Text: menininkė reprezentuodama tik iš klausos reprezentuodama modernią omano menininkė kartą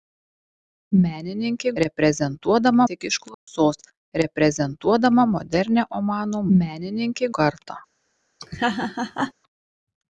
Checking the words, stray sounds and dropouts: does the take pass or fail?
fail